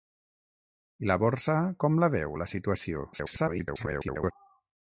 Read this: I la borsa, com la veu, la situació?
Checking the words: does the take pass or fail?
fail